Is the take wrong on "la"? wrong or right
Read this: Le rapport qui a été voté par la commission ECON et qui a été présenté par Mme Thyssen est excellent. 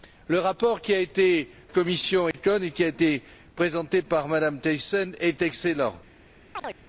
wrong